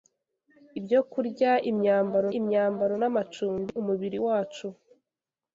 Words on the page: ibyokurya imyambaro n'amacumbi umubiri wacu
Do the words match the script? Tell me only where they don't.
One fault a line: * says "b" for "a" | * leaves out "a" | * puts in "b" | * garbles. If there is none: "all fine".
* puts in "imyambaro"